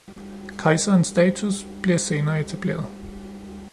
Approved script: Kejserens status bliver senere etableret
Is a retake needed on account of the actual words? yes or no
no